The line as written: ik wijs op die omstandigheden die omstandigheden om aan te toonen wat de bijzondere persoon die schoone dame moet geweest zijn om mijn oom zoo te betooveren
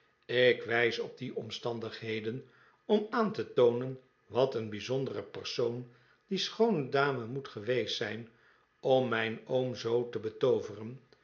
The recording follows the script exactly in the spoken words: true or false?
false